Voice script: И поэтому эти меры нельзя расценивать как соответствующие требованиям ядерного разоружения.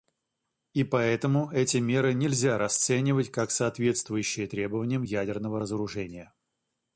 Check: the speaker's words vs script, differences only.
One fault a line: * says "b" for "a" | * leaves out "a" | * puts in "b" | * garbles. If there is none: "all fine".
all fine